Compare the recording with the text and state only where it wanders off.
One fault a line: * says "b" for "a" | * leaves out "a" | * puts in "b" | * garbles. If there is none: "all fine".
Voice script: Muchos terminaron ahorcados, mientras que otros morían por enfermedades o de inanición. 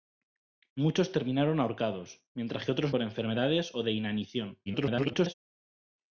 * leaves out "morían"
* garbles